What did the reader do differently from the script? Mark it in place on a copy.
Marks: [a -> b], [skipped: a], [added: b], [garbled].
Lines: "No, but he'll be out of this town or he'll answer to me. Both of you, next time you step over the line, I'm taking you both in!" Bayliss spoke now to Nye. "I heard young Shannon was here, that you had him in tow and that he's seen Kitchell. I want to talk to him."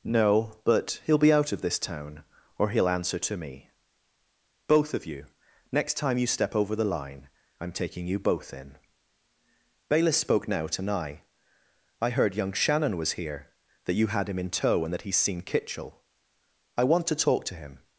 "No, but he'll be out of this town or he'll answer to me. Both of you, next time you step over the line, I'm taking you both in!" Bayliss spoke now to Nye. "I heard young Shannon was here, that you had him in tow and that he's seen Kitchell. I want to talk to him."